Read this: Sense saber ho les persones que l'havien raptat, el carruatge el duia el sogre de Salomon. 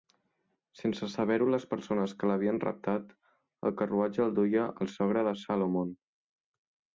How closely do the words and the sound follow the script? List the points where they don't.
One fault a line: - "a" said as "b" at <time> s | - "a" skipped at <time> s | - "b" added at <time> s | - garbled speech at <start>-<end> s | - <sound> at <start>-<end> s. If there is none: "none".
none